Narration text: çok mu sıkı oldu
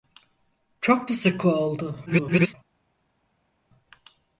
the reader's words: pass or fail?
fail